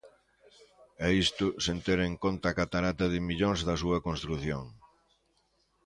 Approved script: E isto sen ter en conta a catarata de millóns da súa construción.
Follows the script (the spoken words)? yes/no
yes